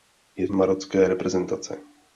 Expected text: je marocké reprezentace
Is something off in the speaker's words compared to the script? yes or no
no